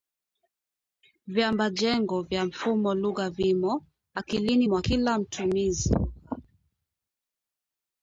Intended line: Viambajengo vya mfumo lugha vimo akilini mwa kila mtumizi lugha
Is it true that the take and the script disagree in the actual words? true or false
false